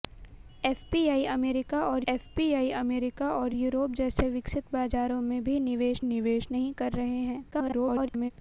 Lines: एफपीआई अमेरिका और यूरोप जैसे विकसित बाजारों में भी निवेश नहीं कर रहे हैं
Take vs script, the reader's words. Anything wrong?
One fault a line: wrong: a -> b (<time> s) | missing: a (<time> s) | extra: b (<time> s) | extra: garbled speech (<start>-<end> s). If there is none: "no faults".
extra: एफपीआई अमेरिका और (2.1 s)
extra: निवेश (6.1 s)
extra: garbled speech (7.5-8.3 s)